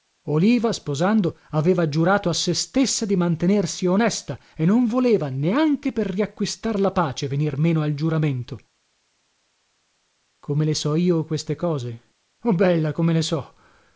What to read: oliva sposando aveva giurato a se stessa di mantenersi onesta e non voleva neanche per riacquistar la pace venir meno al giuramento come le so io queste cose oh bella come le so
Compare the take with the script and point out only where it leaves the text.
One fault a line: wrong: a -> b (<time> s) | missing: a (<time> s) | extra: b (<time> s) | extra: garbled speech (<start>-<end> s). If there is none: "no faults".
no faults